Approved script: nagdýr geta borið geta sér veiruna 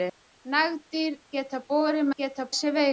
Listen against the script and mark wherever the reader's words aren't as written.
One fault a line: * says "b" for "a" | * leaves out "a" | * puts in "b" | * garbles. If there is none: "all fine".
all fine